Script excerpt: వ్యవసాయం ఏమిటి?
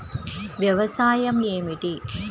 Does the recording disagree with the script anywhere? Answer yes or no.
no